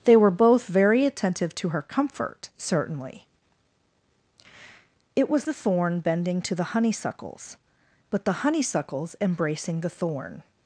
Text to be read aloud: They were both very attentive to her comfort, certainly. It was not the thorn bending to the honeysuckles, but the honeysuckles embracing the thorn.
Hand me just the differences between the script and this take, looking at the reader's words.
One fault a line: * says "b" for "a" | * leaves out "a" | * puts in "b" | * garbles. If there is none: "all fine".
* leaves out "not"